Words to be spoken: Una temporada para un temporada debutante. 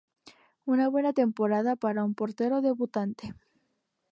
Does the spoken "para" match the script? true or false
true